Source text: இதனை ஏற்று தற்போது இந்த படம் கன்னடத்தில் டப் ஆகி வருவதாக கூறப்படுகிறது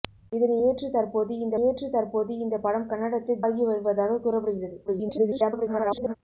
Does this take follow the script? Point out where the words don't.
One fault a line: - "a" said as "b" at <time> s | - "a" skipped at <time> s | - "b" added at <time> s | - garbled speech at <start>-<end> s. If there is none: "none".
- "ஏற்று தற்போது இந்த" added at 1.7 s
- "டப்" skipped at 3.4 s
- garbled speech at 4.9-6.1 s